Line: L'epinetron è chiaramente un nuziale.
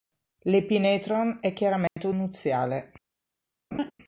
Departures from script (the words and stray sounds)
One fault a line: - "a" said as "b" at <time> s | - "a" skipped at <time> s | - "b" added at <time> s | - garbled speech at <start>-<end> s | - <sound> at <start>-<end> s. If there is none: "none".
- dropout at 1.9-2.0 s
- laugh at 3.7-3.9 s